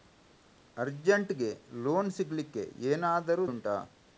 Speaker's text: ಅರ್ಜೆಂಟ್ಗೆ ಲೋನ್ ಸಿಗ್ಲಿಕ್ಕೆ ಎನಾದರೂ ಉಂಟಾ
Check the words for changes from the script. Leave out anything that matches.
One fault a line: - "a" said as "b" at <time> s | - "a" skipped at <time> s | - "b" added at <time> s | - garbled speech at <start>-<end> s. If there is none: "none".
none